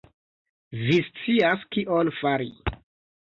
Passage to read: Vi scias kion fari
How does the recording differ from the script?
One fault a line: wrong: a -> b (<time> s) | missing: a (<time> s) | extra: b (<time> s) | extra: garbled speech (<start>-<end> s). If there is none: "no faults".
no faults